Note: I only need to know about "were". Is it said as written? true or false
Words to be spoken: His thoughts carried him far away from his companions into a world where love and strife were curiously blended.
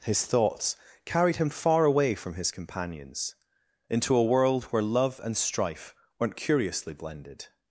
false